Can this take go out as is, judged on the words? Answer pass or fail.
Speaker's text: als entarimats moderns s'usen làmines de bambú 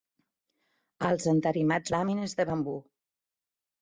fail